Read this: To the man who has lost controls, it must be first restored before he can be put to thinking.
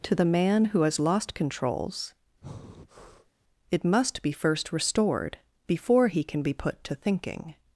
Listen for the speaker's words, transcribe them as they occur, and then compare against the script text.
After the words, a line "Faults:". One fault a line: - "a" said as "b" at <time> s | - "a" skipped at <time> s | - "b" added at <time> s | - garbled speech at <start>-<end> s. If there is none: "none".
To the man who has lost controls, it must be first restored before he can be put to thinking.
Faults:
none